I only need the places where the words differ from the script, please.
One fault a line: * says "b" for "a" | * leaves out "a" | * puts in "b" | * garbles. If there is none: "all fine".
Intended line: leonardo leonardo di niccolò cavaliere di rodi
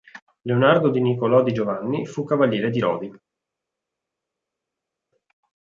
* says "di niccolò" for "leonardo"
* says "giovanni fu" for "niccolò"